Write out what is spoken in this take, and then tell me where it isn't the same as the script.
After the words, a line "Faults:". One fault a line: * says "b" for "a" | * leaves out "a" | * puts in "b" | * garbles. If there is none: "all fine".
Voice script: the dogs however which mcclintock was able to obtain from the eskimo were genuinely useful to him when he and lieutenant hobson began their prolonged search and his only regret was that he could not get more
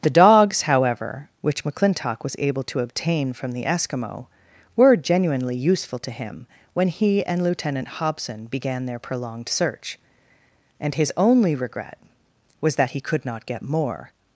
the dogs however which mcclintock was able to obtain from the eskimo were genuinely useful to him when he and lieutenant hobson began their prolonged search and his only regret was that he could not get more
Faults:
all fine